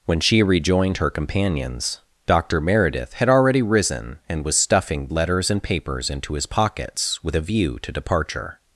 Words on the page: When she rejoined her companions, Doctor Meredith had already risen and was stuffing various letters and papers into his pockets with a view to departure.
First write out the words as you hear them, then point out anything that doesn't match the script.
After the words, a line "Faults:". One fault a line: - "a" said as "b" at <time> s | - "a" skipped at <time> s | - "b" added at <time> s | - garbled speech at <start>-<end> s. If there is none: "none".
When she rejoined her companions, Doctor Meredith had already risen and was stuffing letters and papers into his pockets with a view to departure.
Faults:
- "various" skipped at 5.1 s